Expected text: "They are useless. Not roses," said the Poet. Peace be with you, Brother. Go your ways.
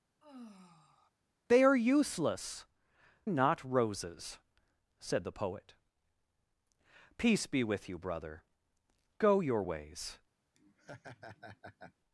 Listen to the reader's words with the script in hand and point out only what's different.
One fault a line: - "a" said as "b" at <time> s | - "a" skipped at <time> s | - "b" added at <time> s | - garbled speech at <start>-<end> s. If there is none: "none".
none